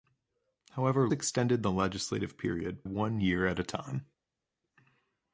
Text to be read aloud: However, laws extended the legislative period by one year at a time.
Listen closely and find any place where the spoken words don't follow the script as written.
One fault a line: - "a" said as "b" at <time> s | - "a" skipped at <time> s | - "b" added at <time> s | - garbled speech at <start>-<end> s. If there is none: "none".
- "laws" skipped at 1.1 s
- "by" skipped at 2.8 s